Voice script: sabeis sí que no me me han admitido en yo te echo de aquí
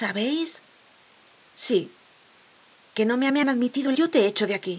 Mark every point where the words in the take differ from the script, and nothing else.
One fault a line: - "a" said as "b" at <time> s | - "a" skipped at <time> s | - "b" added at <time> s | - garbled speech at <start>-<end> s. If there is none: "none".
none